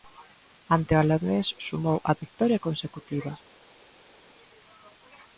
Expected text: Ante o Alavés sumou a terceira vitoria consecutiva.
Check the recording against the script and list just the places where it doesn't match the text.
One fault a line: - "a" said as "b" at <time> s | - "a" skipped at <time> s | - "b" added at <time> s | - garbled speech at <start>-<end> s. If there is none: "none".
- "terceira" skipped at 2.1 s